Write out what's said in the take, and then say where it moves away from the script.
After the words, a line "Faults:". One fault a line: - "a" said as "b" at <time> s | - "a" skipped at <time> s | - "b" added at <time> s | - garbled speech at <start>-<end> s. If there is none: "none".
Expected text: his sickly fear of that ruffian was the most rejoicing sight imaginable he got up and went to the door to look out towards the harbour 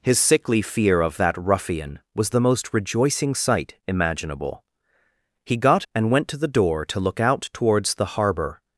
his sickly fear of that ruffian was the most rejoicing sight imaginable he got and went to the door to look out towards the harbour
Faults:
- "up" skipped at 5.8 s